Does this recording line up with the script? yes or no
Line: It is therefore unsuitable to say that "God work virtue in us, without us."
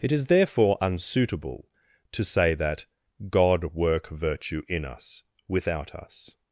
yes